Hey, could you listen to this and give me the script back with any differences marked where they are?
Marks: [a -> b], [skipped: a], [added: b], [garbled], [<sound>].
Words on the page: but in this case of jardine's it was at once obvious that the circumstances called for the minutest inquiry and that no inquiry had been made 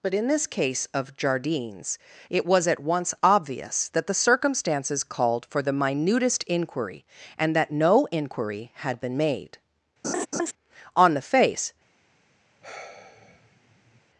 but in this case of jardine's it was at once obvious that the circumstances called for the minutest inquiry and that no inquiry had been made [laugh] [added: on the face] [sigh]